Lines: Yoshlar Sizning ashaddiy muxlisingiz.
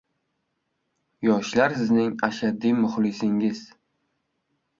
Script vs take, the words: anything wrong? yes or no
no